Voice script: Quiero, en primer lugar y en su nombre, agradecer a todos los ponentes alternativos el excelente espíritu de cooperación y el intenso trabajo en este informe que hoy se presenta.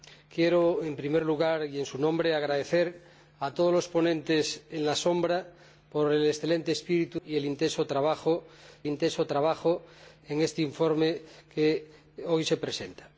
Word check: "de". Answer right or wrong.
wrong